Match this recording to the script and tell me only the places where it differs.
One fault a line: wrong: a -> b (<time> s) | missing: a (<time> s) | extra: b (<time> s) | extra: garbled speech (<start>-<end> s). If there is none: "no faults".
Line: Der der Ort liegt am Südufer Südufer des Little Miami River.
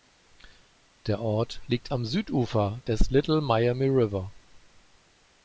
missing: der (1.2 s)
missing: Südufer (2.8 s)